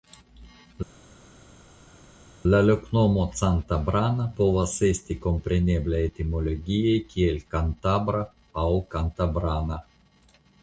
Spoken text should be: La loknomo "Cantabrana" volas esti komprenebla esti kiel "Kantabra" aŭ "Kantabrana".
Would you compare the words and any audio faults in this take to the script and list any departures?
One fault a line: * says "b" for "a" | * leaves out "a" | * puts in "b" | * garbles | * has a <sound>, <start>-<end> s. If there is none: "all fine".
* says "povas" for "volas"
* says "etimologie" for "esti"